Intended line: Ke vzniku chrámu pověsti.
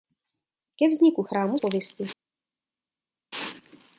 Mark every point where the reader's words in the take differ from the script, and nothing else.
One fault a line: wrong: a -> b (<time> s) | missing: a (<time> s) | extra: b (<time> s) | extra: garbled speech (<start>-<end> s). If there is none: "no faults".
no faults